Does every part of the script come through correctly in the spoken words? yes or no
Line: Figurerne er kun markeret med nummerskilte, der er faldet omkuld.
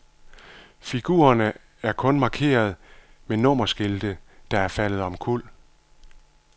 yes